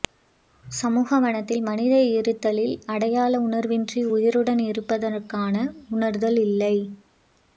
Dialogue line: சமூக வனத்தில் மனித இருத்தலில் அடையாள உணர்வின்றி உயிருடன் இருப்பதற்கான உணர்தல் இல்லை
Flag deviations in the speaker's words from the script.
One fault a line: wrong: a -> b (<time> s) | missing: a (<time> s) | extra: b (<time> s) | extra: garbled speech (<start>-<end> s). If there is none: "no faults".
no faults